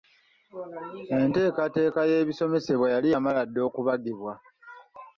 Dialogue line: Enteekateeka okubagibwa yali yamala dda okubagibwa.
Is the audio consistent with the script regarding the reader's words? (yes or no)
no